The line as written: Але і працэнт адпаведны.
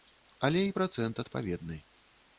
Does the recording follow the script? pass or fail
pass